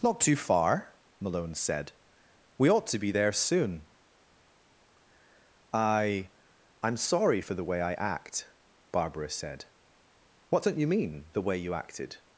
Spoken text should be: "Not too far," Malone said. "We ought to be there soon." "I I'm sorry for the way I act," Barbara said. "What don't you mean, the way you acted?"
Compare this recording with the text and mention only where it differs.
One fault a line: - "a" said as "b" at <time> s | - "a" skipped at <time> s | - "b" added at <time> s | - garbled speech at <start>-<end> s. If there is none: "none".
none